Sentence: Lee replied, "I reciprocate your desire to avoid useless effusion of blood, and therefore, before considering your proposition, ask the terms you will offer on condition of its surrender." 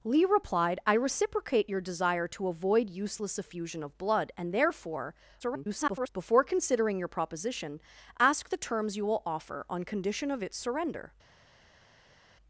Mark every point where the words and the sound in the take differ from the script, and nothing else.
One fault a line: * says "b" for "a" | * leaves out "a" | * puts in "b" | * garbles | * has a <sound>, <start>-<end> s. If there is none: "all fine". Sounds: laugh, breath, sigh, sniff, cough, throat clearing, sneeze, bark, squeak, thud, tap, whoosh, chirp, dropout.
* garbles